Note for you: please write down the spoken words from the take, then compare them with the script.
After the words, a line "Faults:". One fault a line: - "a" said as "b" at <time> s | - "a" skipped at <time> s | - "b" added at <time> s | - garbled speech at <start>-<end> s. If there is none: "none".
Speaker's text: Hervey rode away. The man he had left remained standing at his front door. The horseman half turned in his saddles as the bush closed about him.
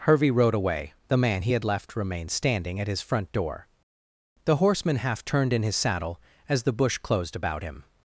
Hervey rode away. The man he had left remained standing at his front door. The horseman half turned in his saddle as the bush closed about him.
Faults:
- "saddles" said as "saddle" at 5.7 s